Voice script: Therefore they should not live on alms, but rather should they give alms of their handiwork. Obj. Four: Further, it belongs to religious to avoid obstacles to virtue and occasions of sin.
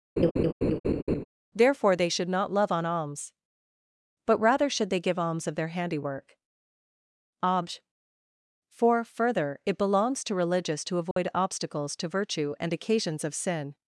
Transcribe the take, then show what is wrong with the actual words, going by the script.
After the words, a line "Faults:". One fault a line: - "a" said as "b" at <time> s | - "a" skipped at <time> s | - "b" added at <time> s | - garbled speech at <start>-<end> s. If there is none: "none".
Therefore they should not love on alms, but rather should they give alms of their handiwork. Obj. Four: Further, it belongs to religious to avoid obstacles to virtue and occasions of sin.
Faults:
- "live" said as "love" at 2.5 s